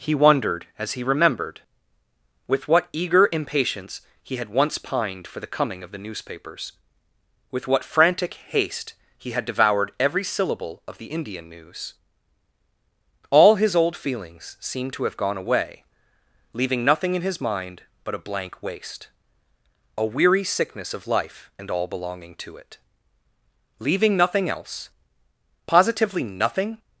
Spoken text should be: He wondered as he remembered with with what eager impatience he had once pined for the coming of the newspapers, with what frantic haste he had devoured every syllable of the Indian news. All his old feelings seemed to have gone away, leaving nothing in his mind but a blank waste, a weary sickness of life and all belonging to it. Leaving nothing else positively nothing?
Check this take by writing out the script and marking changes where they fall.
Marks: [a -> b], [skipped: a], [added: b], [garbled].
He wondered as he remembered with [skipped: with] what eager impatience he had once pined for the coming of the newspapers, with what frantic haste he had devoured every syllable of the Indian news. All his old feelings seemed to have gone away, leaving nothing in his mind but a blank waste, a weary sickness of life and all belonging to it. Leaving nothing else positively nothing?